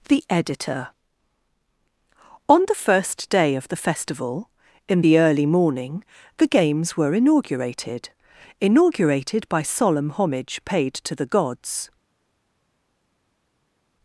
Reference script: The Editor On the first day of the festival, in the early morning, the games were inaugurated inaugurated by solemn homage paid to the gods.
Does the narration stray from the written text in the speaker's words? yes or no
no